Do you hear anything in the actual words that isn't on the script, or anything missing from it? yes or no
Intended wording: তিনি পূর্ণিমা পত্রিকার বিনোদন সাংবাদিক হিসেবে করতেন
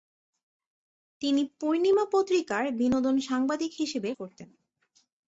no